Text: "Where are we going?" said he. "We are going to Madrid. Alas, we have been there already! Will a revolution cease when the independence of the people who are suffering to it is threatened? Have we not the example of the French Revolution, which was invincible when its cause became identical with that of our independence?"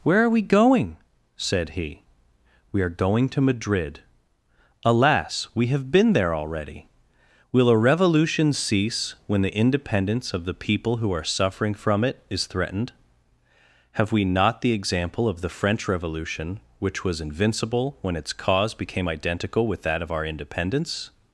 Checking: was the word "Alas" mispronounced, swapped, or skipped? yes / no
no